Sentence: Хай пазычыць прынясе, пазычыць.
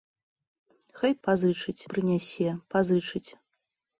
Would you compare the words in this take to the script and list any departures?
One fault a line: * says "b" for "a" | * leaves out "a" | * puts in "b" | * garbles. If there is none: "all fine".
all fine